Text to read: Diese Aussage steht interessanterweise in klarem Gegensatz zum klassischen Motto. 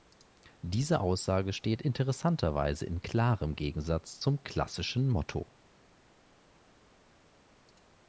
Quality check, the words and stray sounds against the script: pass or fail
pass